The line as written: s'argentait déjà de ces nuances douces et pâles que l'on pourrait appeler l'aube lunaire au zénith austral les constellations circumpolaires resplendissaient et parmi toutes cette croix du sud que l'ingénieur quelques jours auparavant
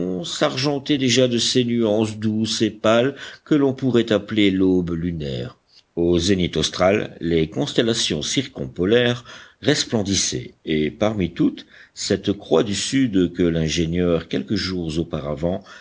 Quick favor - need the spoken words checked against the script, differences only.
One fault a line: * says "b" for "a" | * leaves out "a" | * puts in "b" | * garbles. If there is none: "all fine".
all fine